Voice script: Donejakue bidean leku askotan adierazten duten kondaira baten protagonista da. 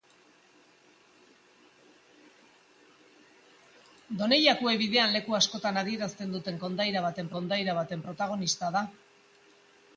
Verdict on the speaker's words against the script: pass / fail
fail